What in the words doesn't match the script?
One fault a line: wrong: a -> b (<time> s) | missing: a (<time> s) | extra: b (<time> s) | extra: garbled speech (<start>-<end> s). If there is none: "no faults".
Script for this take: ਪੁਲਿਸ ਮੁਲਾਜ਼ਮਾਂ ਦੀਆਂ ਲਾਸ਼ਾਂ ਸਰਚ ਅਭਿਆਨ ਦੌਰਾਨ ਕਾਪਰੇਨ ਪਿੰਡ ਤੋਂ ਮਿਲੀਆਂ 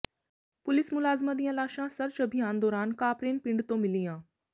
no faults